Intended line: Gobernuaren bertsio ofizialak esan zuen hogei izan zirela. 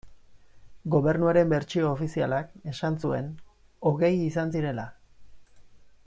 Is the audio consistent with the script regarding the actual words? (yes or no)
yes